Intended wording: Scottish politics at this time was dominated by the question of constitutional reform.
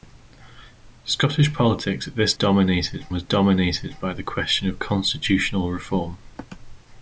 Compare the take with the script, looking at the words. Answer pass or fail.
fail